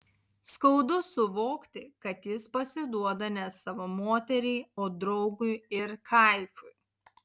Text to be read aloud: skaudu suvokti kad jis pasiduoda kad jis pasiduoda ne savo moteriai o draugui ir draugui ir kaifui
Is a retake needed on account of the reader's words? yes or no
yes